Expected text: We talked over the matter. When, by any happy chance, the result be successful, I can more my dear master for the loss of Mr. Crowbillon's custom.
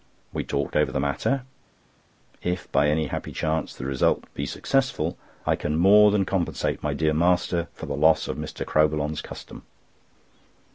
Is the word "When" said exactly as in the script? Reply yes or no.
no